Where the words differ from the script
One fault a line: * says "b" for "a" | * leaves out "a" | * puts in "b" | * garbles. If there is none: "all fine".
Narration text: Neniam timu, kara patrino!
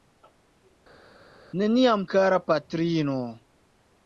* leaves out "timu"